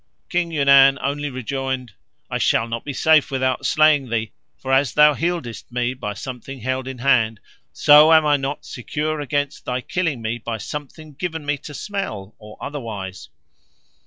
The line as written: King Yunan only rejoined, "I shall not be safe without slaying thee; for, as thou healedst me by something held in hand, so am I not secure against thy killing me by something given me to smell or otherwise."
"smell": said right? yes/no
yes